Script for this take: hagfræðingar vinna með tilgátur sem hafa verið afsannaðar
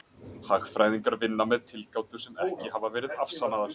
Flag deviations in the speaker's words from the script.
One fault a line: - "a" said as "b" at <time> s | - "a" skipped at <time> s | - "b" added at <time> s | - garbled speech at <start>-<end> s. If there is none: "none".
- "ekki" added at 2.5 s